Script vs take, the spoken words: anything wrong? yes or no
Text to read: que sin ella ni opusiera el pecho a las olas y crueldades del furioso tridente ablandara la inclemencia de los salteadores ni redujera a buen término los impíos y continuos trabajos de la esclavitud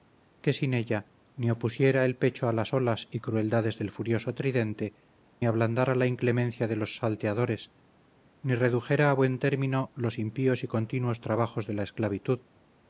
no